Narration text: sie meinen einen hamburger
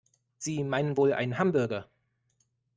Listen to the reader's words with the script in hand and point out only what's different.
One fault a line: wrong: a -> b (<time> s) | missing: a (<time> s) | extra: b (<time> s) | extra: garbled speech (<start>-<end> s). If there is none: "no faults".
extra: wohl (0.9 s)